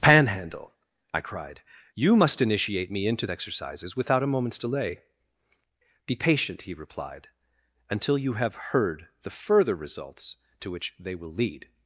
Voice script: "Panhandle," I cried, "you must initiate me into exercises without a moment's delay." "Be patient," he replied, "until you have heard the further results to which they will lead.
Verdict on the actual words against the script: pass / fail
pass